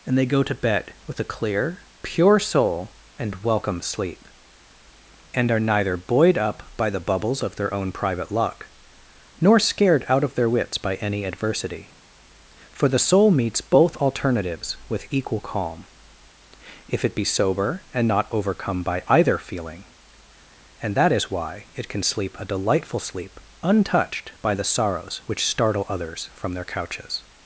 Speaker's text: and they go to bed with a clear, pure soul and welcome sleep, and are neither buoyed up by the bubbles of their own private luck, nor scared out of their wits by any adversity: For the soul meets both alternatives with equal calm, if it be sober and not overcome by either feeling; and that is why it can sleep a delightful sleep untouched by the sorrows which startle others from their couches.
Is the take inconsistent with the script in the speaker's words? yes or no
no